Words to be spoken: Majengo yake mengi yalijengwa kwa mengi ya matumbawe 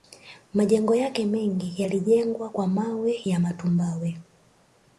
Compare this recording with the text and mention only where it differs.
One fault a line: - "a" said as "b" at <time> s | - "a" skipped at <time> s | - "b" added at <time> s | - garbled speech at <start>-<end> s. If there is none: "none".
- "mengi" said as "mawe" at 2.7 s